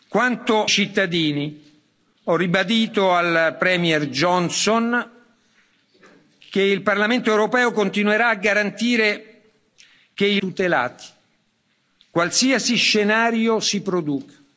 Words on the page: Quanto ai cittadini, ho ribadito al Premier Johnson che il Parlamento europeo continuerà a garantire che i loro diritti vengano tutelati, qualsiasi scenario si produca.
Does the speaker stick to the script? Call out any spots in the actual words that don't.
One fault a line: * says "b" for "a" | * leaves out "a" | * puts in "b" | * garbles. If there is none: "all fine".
* leaves out "ai"
* leaves out "loro diritti vengano"